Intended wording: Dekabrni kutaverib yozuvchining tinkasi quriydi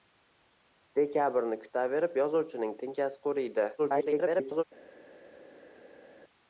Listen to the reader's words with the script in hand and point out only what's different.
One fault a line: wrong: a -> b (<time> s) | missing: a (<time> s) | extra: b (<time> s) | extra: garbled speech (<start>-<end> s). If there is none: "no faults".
extra: garbled speech (3.8-4.6 s)